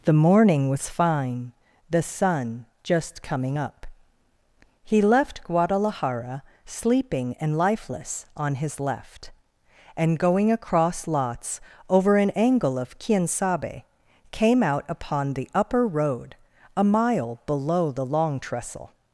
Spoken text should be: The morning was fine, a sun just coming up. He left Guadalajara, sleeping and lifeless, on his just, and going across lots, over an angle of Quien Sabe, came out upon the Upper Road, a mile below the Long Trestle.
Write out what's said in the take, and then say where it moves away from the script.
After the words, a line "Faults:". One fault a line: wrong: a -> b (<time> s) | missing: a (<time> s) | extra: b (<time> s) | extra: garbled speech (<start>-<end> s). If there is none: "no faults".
The morning was fine, the sun just coming up. He left Guadalajara, sleeping and lifeless, on his left, and going across lots, over an angle of Quien Sabe, came out upon the Upper Road, a mile below the Long Trestle.
Faults:
wrong: a -> the (1.9 s)
wrong: just -> left (8.8 s)